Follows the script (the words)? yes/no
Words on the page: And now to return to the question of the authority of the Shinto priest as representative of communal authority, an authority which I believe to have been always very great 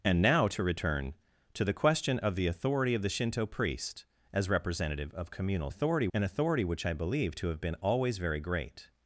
yes